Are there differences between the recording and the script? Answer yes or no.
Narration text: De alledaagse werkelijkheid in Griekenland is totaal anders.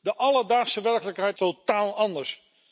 yes